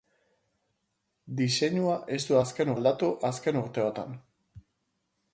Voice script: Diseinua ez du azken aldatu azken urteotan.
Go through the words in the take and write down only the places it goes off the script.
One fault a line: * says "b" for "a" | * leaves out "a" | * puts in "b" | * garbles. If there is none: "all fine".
all fine